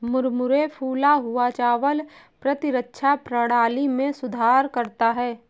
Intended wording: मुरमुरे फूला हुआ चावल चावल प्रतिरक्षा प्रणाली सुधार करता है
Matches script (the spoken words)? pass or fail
fail